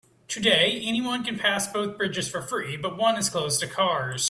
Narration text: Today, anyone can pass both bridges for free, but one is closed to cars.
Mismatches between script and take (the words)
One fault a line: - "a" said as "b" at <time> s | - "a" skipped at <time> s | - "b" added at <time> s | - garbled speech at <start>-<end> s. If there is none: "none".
none